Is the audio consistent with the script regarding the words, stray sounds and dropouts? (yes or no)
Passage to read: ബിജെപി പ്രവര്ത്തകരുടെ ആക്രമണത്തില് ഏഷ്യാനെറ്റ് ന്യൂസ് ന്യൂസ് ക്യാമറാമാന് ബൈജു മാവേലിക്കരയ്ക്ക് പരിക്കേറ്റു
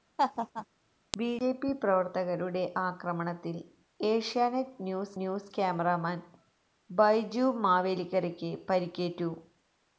no